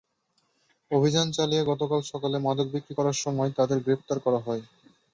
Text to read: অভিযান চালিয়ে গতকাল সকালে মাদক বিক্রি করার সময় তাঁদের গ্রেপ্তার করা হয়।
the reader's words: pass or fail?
pass